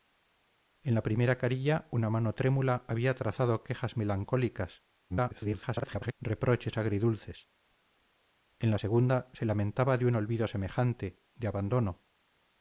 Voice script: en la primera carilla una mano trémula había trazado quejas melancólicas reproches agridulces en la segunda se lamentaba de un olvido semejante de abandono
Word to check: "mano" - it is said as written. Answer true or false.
true